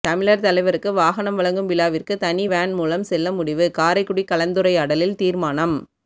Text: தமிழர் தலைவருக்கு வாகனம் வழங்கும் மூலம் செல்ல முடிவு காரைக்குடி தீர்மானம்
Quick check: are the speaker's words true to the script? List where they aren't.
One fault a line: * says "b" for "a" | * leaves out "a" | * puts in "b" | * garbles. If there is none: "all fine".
* puts in "விழாவிற்கு தனி வேன்"
* puts in "கலந்துரையாடலில்"